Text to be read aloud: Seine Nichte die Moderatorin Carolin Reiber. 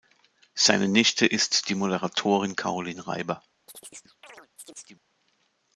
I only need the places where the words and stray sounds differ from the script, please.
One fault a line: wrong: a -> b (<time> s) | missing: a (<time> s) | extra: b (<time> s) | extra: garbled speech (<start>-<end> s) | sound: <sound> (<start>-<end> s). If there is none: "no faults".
extra: ist (1.3 s)
sound: chirp (3.7-5.1 s)